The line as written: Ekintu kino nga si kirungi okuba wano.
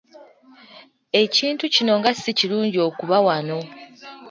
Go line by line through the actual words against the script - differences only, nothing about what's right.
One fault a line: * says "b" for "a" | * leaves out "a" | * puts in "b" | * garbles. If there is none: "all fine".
all fine